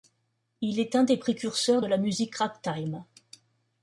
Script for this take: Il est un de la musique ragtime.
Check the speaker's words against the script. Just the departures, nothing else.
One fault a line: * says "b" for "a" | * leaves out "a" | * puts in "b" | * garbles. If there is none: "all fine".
* puts in "des précurseurs"